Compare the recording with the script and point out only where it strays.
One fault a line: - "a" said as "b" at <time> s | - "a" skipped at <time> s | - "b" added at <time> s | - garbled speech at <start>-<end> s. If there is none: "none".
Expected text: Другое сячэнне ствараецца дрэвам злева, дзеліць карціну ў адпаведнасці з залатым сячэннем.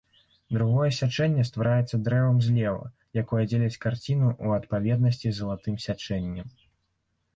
- "якое" added at 3.2 s